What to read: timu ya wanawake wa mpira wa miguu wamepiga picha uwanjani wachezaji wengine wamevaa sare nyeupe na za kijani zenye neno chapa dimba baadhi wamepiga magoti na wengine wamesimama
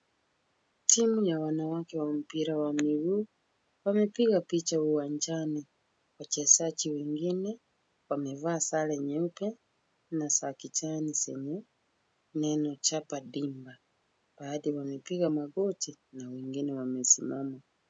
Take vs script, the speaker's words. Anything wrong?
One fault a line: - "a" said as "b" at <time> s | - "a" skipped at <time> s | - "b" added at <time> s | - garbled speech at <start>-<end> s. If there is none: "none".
none